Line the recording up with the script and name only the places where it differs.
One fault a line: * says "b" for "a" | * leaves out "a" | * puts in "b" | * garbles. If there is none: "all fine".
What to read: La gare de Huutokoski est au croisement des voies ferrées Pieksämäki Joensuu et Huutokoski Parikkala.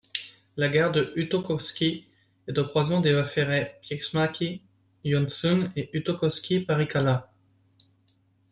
all fine